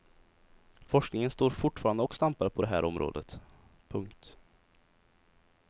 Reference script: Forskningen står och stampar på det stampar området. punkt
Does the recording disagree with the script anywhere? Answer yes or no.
yes